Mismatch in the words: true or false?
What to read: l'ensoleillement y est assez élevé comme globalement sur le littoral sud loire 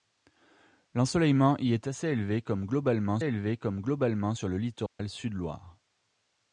true